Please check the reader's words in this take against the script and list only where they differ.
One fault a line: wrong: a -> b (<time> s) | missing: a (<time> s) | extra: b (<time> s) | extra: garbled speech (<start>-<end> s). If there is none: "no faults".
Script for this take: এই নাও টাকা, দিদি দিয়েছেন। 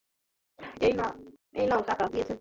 missing: দিদি (2.0 s)